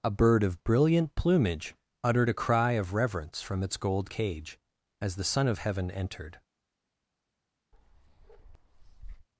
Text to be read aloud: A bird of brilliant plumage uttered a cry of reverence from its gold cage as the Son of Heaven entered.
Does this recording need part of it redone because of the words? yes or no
no